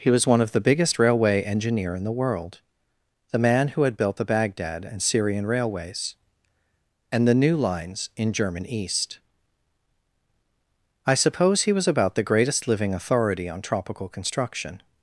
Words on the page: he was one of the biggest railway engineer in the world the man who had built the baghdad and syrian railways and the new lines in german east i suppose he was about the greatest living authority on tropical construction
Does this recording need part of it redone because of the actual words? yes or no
no